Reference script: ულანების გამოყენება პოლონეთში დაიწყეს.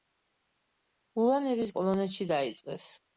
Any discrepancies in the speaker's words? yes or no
yes